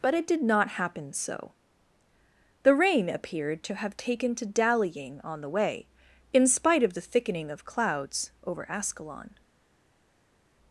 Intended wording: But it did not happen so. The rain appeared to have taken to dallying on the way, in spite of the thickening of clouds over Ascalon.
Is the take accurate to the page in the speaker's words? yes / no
yes